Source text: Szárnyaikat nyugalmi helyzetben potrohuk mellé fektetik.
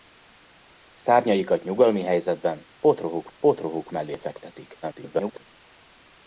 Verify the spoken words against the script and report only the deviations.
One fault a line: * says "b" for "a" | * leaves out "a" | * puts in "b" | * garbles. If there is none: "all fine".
* puts in "potrohuk"
* garbles